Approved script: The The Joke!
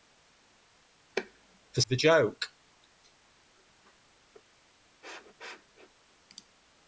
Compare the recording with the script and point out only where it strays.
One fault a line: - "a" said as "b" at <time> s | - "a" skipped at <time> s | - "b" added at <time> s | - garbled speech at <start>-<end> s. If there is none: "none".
none